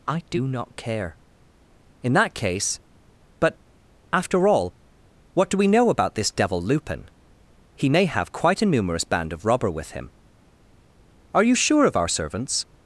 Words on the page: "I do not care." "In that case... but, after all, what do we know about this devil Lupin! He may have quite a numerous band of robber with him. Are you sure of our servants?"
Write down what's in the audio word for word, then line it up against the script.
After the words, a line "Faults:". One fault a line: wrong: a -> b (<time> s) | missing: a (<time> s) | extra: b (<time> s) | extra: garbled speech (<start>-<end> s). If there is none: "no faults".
"I do not care." "In that case... but, after all, what do we know about this devil Lupin! He may have quite a numerous band of robber with him. Are you sure of our servants?"
Faults:
no faults